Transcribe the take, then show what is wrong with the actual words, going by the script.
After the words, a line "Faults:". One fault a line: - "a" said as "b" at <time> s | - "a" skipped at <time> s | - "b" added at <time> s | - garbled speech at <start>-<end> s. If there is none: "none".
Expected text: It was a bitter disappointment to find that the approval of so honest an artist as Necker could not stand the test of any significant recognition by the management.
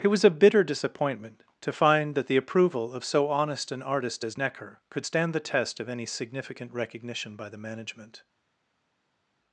It was a bitter disappointment to find that the approval of so honest an artist as Necker could stand the test of any significant recognition by the management.
Faults:
- "not" skipped at 5.1 s